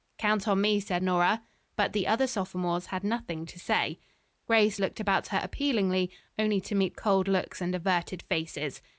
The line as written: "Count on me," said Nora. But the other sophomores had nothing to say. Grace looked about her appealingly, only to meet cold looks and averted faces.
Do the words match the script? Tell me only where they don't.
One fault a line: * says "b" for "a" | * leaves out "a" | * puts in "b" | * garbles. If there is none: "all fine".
all fine